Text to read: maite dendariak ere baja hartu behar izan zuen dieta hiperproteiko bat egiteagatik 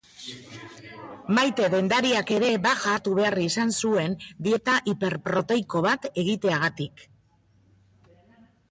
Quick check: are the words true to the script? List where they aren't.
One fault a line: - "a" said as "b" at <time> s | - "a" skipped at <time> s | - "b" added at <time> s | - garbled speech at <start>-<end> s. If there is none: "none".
none